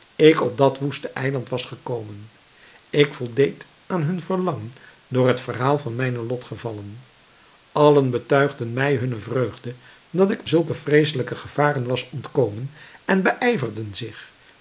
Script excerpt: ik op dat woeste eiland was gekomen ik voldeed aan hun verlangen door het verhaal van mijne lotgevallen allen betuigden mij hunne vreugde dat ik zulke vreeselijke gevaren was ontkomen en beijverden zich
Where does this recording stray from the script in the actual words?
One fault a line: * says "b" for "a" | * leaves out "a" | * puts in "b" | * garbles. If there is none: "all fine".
all fine